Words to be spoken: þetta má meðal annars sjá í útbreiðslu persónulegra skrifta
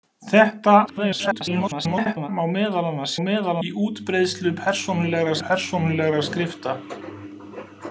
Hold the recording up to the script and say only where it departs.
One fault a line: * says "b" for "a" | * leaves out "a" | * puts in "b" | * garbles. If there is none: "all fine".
* garbles
* says "meðal" for "sjá"
* puts in "persónulegra"